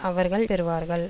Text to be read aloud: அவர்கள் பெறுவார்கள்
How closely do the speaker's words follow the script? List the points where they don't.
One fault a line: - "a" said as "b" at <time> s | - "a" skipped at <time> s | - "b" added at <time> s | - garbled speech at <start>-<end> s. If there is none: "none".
none